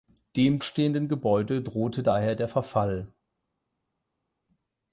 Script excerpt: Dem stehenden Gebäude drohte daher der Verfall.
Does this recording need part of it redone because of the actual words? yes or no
no